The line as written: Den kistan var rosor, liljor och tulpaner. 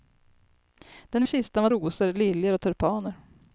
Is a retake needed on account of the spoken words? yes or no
no